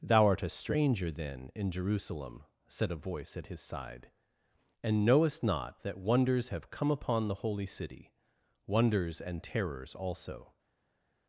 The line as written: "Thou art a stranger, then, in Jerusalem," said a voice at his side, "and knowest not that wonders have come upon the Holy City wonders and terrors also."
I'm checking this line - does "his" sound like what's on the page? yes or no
yes